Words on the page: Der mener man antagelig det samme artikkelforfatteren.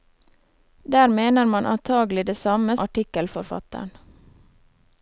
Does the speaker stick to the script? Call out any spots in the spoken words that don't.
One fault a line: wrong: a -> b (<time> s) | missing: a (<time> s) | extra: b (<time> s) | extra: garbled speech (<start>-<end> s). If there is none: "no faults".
no faults